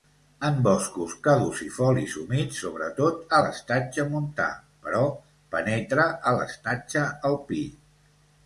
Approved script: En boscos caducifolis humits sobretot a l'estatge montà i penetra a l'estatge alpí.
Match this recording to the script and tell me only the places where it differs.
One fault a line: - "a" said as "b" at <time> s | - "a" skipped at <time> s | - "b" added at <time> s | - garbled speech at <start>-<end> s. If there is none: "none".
- "i" said as "però" at 4.9 s